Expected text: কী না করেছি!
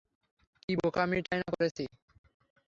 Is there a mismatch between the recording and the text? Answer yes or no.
yes